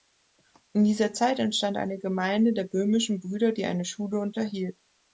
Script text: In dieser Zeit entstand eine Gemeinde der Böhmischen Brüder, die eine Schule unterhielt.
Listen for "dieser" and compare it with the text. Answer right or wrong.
right